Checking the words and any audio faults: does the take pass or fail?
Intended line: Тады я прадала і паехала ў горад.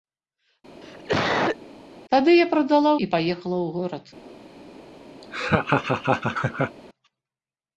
fail